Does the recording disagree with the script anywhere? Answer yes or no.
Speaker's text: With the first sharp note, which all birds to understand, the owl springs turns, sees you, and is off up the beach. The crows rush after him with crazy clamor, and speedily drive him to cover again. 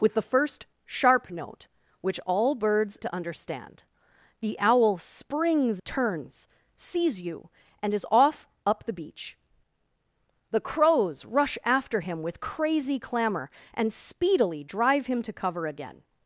no